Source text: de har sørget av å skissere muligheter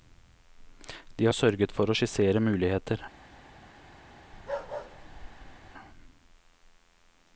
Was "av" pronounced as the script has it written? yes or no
no